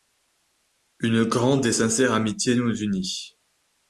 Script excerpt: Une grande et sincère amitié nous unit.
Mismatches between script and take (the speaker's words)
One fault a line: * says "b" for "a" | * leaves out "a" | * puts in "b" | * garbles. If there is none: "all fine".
all fine